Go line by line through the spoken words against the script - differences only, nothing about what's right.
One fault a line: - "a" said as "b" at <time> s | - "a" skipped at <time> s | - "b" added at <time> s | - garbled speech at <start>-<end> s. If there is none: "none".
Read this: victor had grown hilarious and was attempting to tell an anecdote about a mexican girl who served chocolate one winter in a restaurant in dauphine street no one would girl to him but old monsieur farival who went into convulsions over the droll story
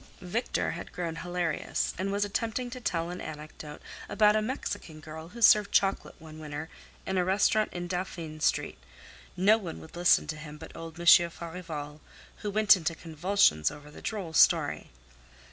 - "girl" said as "listen" at 10.0 s